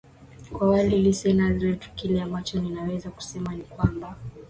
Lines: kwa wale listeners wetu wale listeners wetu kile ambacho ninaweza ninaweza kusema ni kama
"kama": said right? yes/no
no